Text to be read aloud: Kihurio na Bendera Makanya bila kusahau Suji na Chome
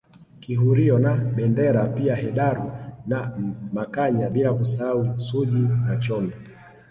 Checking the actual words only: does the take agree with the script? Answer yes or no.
no